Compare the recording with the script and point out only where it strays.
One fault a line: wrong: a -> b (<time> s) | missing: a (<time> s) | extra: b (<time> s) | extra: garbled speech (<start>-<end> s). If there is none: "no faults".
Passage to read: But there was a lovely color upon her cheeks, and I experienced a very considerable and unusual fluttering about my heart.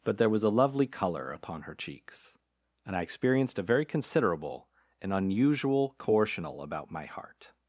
wrong: fluttering -> coercional (6.0 s)